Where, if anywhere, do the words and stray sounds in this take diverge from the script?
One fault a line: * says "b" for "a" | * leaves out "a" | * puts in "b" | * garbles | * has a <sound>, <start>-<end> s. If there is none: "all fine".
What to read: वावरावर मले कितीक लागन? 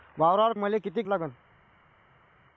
all fine